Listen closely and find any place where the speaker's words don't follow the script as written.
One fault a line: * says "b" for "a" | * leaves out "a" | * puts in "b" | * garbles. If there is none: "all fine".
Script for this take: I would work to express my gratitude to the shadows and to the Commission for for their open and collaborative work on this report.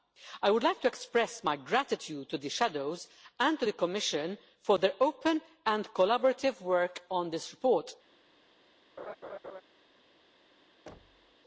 * says "like" for "work"
* leaves out "for"